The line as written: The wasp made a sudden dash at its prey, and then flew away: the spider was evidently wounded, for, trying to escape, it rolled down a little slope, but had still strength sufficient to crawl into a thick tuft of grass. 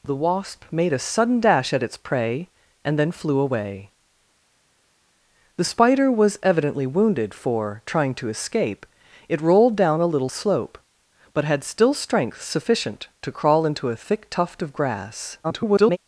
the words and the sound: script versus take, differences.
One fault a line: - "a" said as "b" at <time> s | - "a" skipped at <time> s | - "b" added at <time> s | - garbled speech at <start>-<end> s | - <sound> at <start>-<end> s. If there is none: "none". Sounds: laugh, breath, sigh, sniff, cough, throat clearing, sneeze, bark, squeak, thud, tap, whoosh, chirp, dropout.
- garbled speech at 15.4-16.0 s